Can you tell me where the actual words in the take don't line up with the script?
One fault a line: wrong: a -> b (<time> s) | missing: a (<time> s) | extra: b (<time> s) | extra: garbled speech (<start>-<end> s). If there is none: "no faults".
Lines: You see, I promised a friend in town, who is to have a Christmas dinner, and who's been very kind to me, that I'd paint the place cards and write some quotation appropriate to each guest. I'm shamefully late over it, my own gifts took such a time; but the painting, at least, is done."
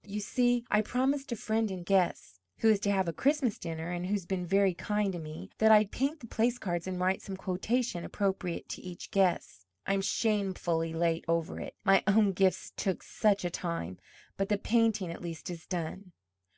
wrong: town -> guest (1.9 s)